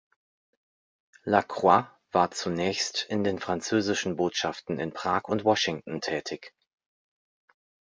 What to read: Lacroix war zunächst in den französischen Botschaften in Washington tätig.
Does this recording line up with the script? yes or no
no